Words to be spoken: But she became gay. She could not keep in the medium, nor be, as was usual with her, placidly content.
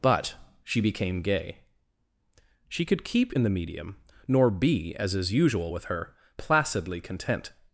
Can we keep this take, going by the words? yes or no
no